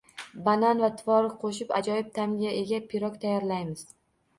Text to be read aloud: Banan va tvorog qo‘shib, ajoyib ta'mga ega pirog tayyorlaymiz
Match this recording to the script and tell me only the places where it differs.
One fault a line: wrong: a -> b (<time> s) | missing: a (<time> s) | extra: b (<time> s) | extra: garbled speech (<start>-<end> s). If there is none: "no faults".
no faults